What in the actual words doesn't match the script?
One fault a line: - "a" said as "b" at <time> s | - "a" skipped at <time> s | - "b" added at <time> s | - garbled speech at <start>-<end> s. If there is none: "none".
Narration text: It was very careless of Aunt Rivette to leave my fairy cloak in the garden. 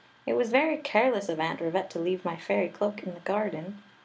none